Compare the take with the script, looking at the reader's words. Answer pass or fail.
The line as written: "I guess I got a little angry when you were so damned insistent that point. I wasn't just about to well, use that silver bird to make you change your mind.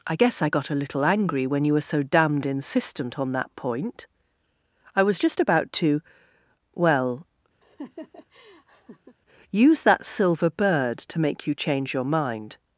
fail